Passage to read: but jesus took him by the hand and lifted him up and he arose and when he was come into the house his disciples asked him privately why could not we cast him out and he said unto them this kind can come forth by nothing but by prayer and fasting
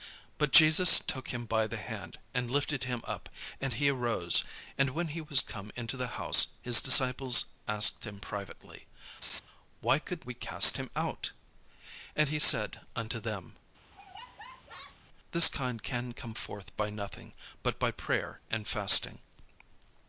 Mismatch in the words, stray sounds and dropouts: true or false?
true